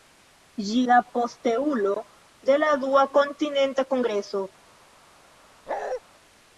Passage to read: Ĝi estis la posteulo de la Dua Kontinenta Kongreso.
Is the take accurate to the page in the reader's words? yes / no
no